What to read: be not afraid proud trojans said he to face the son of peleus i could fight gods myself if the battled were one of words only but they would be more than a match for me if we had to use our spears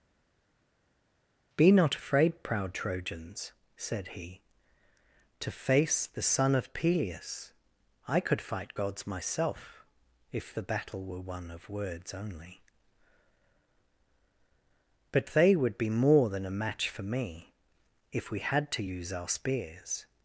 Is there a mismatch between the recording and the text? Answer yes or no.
yes